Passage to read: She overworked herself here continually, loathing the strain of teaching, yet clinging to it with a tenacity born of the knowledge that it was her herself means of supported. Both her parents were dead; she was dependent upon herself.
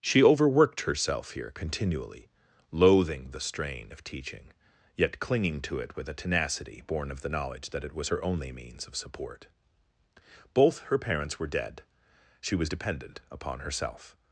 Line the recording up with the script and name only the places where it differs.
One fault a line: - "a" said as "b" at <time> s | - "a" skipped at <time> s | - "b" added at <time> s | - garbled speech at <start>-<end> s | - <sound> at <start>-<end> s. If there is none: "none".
- "herself" said as "only" at 8.2 s
- "supported" said as "support" at 9.0 s